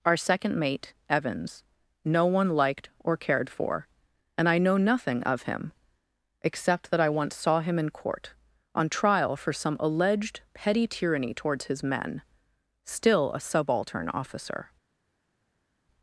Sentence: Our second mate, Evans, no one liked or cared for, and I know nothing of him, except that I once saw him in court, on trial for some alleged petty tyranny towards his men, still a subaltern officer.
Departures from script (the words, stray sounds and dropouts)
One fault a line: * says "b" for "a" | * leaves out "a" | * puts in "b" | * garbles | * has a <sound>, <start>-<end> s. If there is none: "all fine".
all fine